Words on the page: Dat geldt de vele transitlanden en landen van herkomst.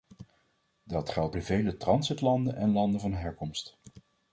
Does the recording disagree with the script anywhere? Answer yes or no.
no